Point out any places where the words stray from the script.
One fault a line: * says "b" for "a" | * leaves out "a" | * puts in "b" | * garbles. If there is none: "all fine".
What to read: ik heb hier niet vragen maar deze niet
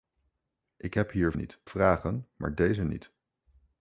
all fine